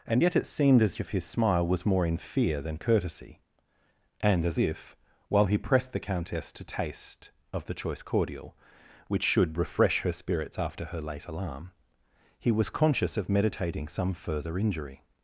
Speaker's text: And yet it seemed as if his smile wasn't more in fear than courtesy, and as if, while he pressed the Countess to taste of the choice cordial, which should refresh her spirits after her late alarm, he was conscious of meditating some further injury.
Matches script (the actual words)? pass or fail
fail